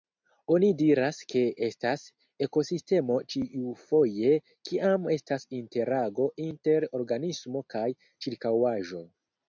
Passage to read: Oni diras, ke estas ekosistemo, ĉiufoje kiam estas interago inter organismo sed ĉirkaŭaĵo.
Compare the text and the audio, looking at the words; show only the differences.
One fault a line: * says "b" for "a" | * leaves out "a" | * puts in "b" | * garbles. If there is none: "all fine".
* says "kaj" for "sed"